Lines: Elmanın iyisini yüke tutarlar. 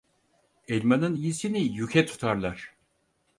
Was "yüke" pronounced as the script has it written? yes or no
yes